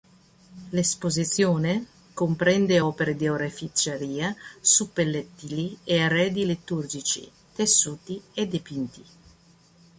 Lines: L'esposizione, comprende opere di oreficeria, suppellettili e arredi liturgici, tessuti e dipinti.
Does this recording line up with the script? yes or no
yes